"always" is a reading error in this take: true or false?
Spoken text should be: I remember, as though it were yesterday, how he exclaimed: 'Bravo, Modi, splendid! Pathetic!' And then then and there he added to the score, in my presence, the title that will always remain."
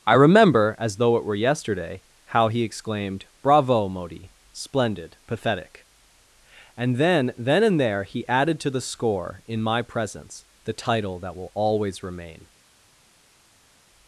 false